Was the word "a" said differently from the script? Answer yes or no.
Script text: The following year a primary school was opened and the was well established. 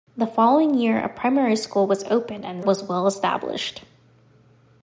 no